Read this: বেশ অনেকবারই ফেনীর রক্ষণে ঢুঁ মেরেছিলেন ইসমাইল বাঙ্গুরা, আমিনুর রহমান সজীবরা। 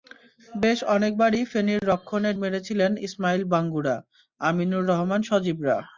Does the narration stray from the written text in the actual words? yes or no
yes